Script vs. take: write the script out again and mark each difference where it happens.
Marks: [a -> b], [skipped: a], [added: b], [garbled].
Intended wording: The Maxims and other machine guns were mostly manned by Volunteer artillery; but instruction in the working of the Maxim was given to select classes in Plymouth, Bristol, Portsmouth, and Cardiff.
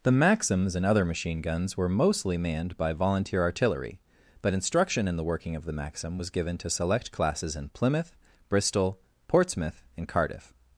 The Maxims and other machine guns were mostly manned by Volunteer artillery; but instruction in the working of the Maxim was given to select classes in Plymouth, Bristol, Portsmouth, and Cardiff.